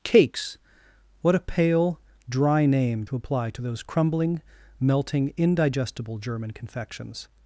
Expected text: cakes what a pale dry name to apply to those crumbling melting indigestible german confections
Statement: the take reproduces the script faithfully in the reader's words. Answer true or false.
true